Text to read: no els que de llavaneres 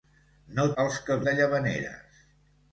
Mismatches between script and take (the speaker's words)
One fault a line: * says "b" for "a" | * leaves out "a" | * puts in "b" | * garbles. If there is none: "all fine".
all fine